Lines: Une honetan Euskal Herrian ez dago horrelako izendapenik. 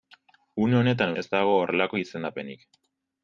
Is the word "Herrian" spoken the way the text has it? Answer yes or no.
no